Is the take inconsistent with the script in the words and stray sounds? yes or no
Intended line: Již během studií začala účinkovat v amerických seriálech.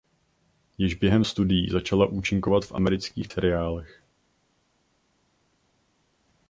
no